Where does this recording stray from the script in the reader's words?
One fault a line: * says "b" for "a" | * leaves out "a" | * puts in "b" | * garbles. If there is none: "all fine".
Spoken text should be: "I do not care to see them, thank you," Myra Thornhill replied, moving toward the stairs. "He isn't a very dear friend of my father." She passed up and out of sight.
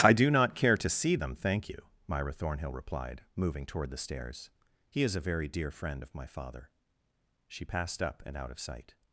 * says "is" for "isn't"